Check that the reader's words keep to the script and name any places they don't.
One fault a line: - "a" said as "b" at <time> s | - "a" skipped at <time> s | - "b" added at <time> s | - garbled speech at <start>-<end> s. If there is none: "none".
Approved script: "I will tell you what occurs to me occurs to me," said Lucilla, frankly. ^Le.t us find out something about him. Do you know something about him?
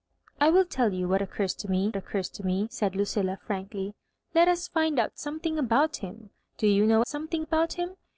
none